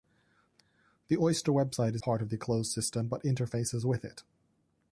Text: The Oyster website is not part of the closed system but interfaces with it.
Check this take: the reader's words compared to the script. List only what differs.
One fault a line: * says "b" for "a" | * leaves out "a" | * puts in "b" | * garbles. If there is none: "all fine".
* leaves out "not"